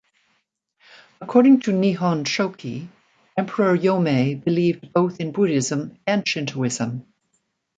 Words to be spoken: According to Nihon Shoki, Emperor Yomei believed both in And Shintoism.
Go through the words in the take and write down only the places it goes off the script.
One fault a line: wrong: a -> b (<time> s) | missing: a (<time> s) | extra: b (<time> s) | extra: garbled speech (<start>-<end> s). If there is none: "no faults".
extra: Buddhism (5.3 s)